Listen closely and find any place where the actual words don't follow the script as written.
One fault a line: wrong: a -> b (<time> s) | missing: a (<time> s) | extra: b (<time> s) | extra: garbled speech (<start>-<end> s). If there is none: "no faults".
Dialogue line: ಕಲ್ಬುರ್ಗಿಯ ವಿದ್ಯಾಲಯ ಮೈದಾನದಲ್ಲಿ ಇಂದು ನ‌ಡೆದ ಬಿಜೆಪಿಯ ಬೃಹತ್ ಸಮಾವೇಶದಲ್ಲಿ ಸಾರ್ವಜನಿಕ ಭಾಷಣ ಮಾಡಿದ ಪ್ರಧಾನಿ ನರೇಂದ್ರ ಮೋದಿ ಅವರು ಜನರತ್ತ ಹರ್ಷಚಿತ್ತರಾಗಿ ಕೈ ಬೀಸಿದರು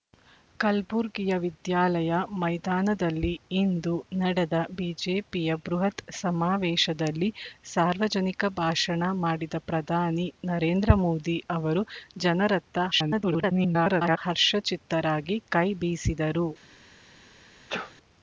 extra: garbled speech (12.9-14.2 s)